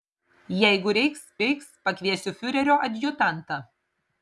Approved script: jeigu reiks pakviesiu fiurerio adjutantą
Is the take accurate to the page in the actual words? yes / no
no